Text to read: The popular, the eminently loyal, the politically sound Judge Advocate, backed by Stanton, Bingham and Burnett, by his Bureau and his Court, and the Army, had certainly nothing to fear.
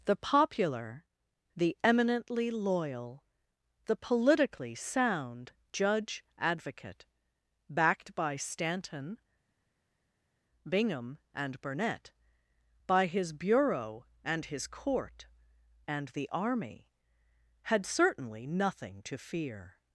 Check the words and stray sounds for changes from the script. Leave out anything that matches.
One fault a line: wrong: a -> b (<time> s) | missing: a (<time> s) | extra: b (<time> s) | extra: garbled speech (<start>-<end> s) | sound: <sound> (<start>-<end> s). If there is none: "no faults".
no faults